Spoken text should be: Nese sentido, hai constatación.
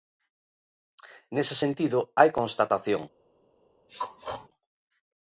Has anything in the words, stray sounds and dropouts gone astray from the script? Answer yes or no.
yes